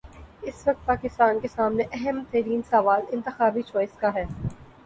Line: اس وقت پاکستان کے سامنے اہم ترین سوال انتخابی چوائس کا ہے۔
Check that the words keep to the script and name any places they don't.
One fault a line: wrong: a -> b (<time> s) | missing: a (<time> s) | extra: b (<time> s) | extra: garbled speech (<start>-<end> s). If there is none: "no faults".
no faults